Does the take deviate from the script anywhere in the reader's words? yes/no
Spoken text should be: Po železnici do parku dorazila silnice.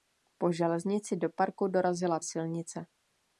no